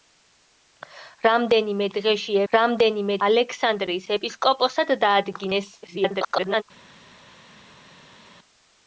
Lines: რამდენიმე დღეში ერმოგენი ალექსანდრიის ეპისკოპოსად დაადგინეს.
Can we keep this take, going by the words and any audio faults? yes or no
no